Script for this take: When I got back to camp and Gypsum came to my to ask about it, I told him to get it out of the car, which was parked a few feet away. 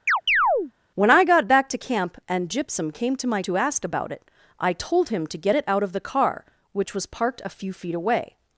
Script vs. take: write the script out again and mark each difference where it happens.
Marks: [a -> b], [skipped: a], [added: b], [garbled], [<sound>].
[chirp] When I got back to camp and Gypsum came to my to ask about it, I told him to get it out of the car, which was parked a few feet away.